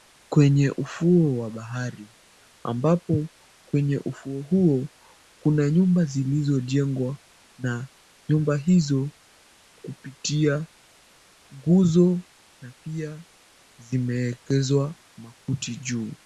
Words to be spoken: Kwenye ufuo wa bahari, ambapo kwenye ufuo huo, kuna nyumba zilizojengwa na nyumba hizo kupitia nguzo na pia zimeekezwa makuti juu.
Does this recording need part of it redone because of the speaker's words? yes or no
no